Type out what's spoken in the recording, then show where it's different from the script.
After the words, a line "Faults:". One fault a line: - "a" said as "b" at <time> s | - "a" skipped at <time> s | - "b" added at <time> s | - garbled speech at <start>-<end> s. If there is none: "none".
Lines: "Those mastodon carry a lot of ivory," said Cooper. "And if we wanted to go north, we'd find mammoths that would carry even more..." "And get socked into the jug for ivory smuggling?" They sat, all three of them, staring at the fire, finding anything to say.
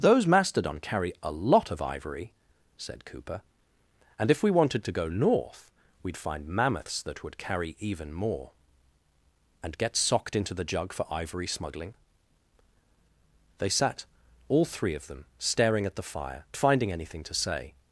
"Those mastodon carry a lot of ivory," said Cooper. "And if we wanted to go north, we'd find mammoths that would carry even more..." "And get socked into the jug for ivory smuggling?" They sat, all three of them, staring at the fire, finding anything to say.
Faults:
none